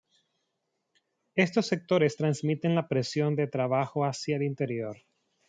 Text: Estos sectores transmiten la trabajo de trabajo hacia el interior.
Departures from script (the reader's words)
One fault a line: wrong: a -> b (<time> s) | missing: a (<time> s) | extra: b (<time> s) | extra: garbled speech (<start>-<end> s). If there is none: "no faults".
wrong: trabajo -> presión (2.9 s)